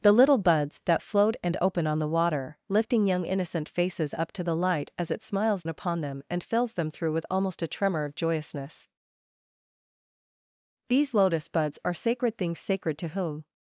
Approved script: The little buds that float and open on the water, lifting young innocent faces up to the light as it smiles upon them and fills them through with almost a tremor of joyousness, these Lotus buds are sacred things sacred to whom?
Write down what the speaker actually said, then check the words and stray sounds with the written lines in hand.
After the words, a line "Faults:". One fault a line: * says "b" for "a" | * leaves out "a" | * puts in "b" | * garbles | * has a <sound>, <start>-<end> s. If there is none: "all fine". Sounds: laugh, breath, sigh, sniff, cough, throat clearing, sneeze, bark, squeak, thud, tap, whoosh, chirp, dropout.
The little buds that float and open on the water, lifting young innocent faces up to the light as it smiles upon them and fills them through with almost a tremor of joyousness, these Lotus buds are sacred things sacred to whom?
Faults:
all fine